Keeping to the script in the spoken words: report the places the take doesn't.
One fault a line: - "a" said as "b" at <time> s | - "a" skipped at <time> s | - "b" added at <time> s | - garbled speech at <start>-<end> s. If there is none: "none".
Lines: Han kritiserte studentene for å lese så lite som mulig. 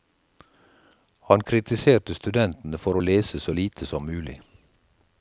none